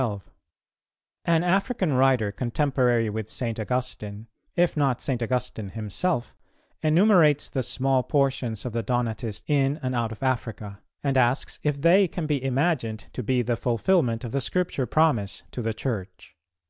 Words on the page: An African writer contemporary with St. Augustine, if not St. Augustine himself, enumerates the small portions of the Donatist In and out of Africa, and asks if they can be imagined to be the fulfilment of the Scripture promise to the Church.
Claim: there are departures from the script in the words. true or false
false